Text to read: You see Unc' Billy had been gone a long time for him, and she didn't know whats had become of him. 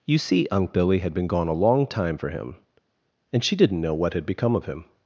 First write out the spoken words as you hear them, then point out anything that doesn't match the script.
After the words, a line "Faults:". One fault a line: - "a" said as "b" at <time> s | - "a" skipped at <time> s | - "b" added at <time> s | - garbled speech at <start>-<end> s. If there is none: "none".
You see Unc' Billy had been gone a long time for him, and she didn't know what had become of him.
Faults:
- "whats" said as "what" at 3.9 s